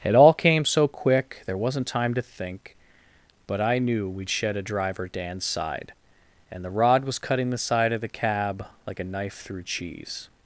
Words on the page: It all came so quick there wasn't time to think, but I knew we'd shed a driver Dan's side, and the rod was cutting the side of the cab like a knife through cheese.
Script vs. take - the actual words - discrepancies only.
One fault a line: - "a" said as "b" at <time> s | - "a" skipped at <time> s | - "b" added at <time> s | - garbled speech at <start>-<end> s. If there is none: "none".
none